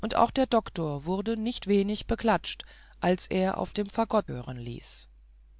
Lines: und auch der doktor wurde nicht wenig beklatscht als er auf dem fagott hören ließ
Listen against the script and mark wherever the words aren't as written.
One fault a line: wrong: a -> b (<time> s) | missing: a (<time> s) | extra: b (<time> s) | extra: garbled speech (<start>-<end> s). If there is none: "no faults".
no faults